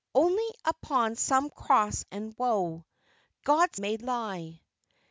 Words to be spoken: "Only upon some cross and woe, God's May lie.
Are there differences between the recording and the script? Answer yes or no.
no